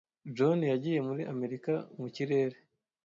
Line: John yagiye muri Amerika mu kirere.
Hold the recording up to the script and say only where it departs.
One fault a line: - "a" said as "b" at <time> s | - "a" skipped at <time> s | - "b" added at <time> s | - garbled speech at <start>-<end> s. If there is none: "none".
none